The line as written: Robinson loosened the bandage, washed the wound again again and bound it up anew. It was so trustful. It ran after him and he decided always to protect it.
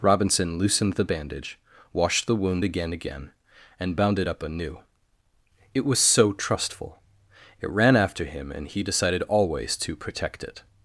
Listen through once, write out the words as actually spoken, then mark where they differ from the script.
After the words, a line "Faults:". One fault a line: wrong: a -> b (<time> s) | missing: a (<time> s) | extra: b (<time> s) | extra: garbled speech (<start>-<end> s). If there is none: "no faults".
Robinson loosened the bandage, washed the wound again again and bound it up anew. It was so trustful. It ran after him and he decided always to protect it.
Faults:
no faults